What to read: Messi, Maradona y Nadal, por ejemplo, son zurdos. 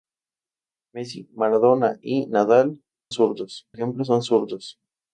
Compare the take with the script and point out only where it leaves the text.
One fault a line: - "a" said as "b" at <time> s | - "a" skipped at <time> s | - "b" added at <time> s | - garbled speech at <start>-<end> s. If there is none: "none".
- "por" said as "zurdos" at 3.1 s